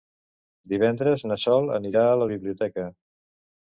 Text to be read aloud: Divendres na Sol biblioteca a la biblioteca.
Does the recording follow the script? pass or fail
fail